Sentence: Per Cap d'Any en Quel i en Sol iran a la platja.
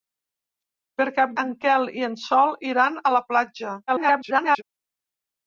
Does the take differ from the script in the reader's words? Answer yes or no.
yes